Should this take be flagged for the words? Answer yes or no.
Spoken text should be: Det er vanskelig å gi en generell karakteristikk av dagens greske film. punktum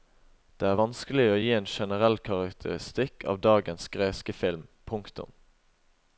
no